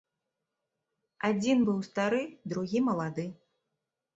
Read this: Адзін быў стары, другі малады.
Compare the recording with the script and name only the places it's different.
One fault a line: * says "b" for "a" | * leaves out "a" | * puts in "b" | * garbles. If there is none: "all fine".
all fine